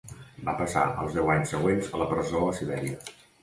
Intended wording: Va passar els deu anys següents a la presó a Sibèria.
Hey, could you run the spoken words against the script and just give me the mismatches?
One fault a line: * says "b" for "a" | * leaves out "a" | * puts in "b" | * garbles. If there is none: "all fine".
all fine